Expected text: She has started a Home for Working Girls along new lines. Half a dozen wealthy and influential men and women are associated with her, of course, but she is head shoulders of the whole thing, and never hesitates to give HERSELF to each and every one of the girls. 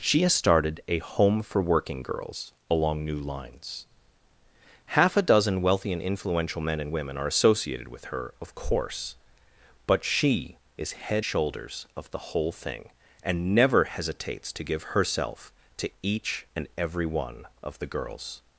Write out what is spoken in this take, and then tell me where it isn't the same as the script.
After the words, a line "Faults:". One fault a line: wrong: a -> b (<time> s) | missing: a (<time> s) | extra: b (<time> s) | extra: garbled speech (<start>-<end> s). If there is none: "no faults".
She has started a Home for Working Girls along new lines. Half a dozen wealthy and influential men and women are associated with her, of course, but she is head shoulders of the whole thing, and never hesitates to give HERSELF to each and every one of the girls.
Faults:
no faults